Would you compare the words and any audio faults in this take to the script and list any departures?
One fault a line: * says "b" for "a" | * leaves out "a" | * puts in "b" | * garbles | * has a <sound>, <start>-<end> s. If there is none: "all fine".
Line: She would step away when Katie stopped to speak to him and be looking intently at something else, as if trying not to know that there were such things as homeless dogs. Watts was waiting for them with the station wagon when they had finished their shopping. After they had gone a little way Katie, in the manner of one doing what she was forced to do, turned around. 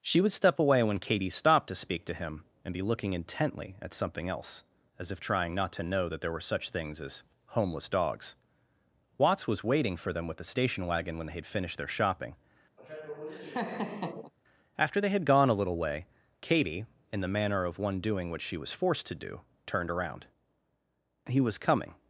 * has a laugh, 12.8-14.3 s
* puts in "He was coming"